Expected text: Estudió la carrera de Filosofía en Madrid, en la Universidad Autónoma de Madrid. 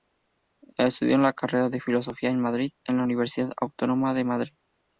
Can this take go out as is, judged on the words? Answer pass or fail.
pass